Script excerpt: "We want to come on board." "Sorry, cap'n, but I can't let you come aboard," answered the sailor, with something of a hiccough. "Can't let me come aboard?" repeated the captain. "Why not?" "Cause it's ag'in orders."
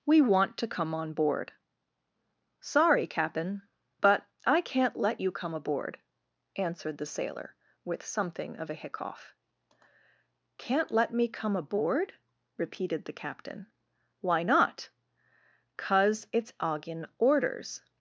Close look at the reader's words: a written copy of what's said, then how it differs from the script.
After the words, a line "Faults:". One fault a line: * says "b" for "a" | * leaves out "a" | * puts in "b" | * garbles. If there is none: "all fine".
"We want to come on board." "Sorry, cap'n, but I can't let you come aboard," answered the sailor, with something of a hiccough. "Can't let me come aboard?" repeated the captain. "Why not?" "Cause it's ag'in orders."
Faults:
all fine